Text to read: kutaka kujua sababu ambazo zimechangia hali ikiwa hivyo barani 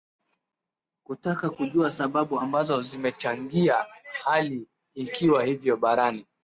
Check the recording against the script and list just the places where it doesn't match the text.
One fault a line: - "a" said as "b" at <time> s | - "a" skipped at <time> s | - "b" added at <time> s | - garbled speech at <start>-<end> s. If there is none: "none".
none